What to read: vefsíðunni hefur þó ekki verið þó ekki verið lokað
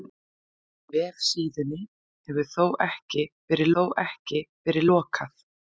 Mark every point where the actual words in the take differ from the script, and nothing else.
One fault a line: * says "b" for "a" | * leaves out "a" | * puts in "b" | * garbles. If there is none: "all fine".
all fine